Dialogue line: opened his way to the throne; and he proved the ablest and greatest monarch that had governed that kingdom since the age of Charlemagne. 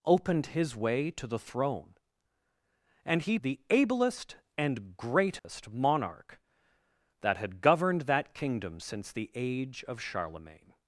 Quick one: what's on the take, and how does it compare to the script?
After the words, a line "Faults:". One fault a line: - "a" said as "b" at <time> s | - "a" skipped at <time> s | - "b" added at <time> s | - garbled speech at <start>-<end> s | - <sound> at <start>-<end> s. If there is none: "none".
opened his way to the throne; and he the ablest and greatest monarch that had governed that kingdom since the age of Charlemagne.
Faults:
- "proved" skipped at 3.4 s
- dropout at 5.4-5.4 s